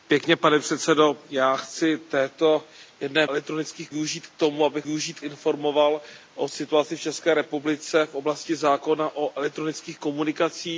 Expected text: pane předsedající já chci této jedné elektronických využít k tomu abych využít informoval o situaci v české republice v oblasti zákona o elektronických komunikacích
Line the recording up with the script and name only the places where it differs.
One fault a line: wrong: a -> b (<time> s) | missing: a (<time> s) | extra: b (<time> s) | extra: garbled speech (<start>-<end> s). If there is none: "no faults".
no faults